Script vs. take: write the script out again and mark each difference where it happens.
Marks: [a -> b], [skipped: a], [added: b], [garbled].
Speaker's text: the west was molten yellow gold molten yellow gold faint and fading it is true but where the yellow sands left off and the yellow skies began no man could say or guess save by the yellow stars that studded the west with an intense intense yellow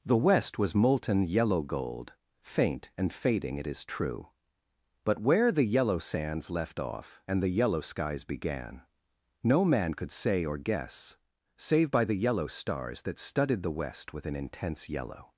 the west was molten yellow gold [skipped: molten yellow gold] faint and fading it is true but where the yellow sands left off and the yellow skies began no man could say or guess save by the yellow stars that studded the west with an intense [skipped: intense] yellow